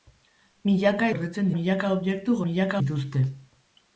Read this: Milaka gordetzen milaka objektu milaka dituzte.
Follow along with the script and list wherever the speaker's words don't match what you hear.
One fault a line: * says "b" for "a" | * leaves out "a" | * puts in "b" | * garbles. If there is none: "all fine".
all fine